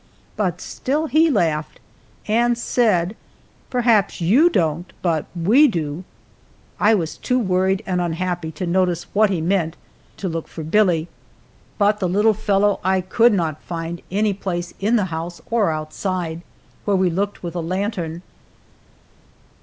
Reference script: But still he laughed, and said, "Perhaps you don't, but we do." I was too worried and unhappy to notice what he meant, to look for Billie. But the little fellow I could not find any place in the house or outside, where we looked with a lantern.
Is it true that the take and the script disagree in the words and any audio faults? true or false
false